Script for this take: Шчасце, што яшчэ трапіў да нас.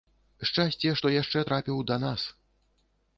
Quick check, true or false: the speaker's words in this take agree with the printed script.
true